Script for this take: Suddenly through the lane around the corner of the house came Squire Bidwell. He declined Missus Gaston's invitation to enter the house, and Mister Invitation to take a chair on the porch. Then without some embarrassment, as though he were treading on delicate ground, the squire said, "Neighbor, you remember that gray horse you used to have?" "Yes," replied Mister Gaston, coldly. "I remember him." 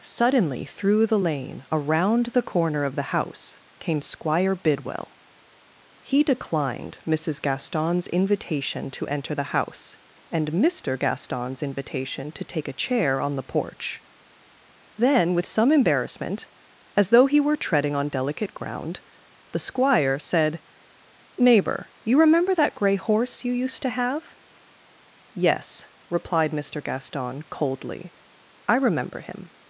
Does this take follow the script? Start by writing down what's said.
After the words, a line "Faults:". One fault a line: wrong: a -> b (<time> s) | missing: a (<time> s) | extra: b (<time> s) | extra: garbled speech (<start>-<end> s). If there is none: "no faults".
Suddenly through the lane around the corner of the house came Squire Bidwell. He declined Missus Gaston's invitation to enter the house, and Mister Gaston's invitation to take a chair on the porch. Then with some embarrassment, as though he were treading on delicate ground, the squire said, "Neighbor, you remember that gray horse you used to have?" "Yes," replied Mister Gaston, coldly. "I remember him."
Faults:
extra: Gaston's (11.0 s)
wrong: without -> with (15.3 s)